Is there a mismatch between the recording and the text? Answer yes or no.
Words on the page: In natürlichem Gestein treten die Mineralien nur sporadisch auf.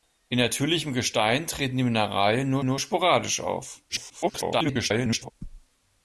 yes